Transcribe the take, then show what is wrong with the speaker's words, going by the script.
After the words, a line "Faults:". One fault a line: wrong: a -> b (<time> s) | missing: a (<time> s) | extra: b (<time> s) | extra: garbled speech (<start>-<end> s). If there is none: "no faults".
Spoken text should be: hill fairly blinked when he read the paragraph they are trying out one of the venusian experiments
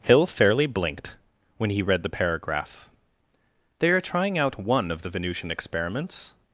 hill fairly blinked when he read the paragraph they are trying out one of the venusian experiments
Faults:
no faults